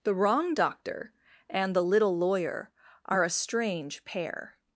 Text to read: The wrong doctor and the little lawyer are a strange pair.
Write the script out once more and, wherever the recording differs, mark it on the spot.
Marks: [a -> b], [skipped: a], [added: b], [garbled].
The wrong doctor and the little lawyer are a strange pair.